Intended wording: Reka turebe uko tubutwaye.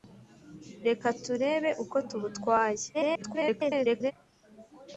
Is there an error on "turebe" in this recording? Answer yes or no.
no